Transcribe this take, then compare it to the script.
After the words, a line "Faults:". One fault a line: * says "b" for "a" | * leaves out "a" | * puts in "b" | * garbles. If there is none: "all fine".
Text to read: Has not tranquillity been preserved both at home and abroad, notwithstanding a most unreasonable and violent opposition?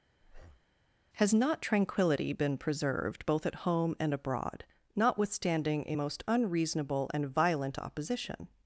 Has not tranquillity been preserved both at home and abroad, notwithstanding a most unreasonable and violent opposition?
Faults:
all fine